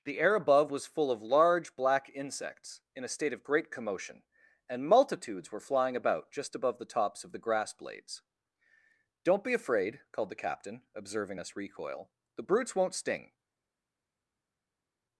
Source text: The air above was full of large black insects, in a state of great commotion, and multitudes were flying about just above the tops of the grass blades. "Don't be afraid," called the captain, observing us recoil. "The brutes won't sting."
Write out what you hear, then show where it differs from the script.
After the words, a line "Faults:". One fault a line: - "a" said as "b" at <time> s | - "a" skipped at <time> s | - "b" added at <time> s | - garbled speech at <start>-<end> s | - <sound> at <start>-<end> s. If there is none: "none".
The air above was full of large black insects, in a state of great commotion, and multitudes were flying about just above the tops of the grass blades. "Don't be afraid," called the captain, observing us recoil. "The brutes won't sting."
Faults:
none